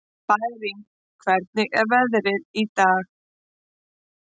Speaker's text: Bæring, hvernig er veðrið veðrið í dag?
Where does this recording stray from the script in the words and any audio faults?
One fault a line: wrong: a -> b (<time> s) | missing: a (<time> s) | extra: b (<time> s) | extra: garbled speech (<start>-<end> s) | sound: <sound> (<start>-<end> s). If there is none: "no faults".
missing: veðrið (2.4 s)